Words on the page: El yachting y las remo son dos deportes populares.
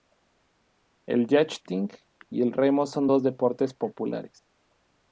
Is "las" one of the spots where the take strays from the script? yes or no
yes